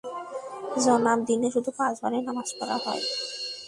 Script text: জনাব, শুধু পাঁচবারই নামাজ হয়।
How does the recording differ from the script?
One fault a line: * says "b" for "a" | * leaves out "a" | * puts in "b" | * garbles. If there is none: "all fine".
* puts in "দিনে"
* puts in "পড়া"